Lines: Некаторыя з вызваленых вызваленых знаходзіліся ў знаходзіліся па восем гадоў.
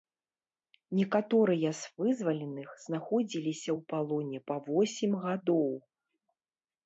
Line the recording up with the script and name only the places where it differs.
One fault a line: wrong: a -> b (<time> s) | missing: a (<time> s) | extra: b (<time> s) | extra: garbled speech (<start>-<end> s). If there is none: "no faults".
missing: вызваленых (2.7 s)
wrong: знаходзіліся -> палоне (3.9 s)